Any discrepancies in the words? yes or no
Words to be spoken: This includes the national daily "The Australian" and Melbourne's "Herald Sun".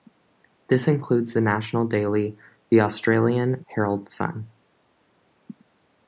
yes